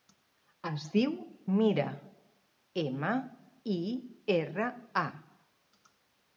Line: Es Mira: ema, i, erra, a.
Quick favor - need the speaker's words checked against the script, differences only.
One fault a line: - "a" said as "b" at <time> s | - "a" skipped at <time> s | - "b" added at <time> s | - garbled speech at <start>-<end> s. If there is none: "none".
- "diu" added at 0.9 s